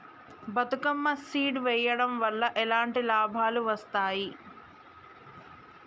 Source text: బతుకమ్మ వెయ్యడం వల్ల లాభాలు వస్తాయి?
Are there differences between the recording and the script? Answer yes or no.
yes